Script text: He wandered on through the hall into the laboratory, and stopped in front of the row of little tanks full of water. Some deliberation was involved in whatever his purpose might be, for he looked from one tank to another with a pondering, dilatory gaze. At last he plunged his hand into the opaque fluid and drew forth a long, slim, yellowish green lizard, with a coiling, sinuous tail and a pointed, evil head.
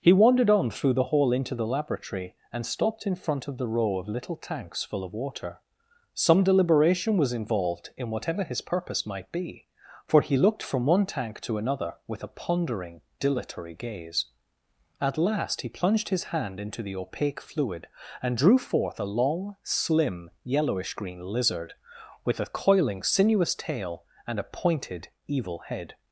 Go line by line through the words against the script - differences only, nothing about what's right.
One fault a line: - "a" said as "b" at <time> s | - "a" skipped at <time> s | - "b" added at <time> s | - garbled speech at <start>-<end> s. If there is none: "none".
none